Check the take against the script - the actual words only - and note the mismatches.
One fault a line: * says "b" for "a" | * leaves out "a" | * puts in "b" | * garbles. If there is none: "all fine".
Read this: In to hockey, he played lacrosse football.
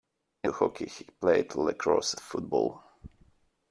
all fine